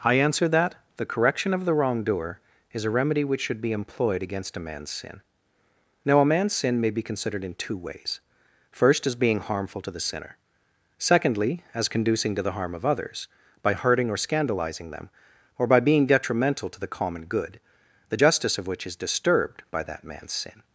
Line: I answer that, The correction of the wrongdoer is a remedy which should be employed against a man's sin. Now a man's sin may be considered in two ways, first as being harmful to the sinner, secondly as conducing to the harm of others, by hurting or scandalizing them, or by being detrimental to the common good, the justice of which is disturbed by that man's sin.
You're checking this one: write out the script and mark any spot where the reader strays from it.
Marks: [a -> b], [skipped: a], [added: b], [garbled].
I answer that, The correction of the wrongdoer is a remedy which should be employed against a man's sin. Now a man's sin may be considered in two ways, first as being harmful to the sinner, secondly as conducing to the harm of others, by hurting or scandalizing them, or by being detrimental to the common good, the justice of which is disturbed by that man's sin.